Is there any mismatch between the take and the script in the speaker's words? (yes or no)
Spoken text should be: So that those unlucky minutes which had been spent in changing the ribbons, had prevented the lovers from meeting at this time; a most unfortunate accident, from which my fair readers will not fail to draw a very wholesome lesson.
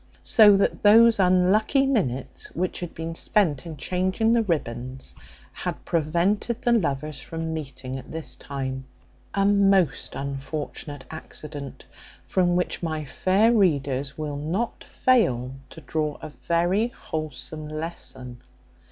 no